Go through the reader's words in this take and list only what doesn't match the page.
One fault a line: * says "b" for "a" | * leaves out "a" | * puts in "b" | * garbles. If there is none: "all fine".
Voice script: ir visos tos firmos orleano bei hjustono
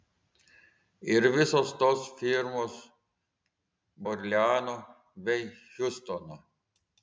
all fine